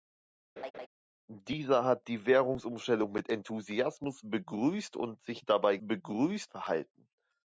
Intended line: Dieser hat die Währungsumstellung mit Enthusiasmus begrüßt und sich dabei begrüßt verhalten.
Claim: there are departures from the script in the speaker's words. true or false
false